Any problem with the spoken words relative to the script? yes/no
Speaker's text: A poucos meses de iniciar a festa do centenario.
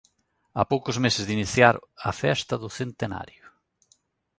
no